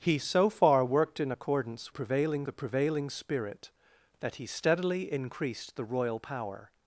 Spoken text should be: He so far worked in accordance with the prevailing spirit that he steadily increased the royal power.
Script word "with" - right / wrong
wrong